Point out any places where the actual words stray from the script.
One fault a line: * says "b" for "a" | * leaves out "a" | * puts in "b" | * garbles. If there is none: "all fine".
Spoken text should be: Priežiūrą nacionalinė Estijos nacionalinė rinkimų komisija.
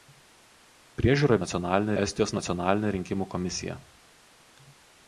all fine